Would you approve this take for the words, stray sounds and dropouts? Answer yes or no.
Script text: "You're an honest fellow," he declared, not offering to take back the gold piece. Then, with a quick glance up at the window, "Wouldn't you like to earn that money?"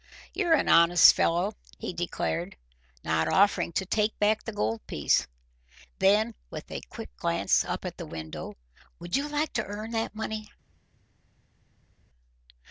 no